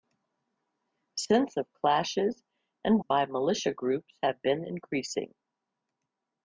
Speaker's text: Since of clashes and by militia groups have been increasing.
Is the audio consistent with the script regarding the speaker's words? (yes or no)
yes